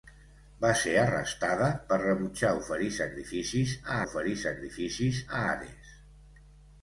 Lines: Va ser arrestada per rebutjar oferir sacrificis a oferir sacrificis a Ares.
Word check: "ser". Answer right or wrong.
right